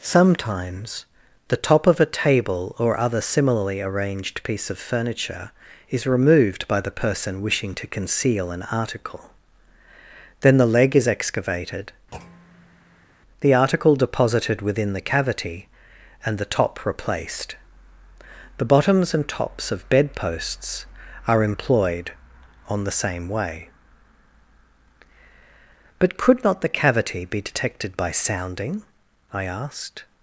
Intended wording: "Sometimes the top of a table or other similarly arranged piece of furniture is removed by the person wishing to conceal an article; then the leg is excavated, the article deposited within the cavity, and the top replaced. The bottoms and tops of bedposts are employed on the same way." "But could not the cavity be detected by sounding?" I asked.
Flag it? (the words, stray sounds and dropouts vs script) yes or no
yes